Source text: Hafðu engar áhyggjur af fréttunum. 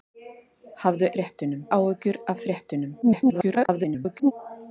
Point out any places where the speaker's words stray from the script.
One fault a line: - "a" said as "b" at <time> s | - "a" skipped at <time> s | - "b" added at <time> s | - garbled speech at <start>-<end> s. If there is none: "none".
- "engar" said as "fréttunum" at 1.1 s
- garbled speech at 3.0-4.3 s